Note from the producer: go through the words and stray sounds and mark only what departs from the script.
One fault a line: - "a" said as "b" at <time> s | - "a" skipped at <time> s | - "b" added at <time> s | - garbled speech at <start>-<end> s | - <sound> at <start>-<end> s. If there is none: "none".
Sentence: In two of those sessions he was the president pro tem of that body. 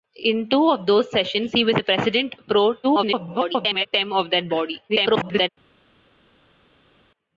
- garbled speech at 2.8-3.9 s
- garbled speech at 4.9-5.5 s